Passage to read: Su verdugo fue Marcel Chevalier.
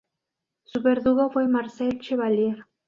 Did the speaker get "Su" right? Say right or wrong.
right